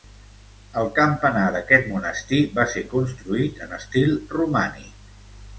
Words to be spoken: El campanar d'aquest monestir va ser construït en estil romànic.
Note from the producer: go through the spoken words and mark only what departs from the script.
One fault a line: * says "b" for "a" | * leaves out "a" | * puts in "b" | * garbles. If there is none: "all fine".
all fine